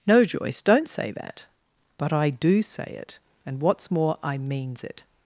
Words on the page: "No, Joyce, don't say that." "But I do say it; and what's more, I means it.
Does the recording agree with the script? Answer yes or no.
yes